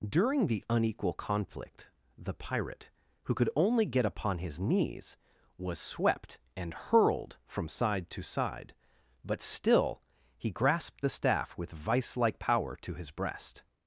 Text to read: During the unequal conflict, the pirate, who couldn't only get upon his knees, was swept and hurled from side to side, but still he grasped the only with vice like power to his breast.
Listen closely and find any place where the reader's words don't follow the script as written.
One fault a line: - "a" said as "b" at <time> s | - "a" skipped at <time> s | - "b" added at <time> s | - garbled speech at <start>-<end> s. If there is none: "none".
- "couldn't" said as "could" at 3.4 s
- "only" said as "staff" at 11.1 s